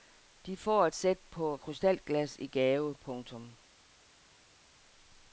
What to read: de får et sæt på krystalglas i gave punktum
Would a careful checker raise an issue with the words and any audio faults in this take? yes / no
no